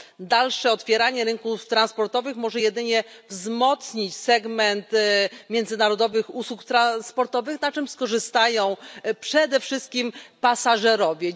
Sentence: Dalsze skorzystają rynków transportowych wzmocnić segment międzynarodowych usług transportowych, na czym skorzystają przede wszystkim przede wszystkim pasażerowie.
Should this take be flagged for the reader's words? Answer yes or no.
yes